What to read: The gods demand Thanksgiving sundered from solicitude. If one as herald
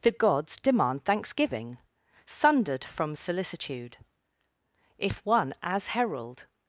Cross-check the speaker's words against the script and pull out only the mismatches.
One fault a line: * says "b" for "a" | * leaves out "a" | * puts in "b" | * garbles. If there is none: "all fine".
all fine